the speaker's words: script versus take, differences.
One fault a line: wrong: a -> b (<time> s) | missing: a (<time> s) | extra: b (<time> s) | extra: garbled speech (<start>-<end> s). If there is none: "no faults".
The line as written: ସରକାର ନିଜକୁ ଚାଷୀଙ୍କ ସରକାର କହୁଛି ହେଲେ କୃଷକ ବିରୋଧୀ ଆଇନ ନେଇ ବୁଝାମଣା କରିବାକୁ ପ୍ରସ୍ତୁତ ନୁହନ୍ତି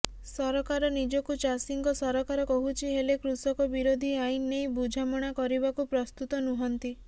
no faults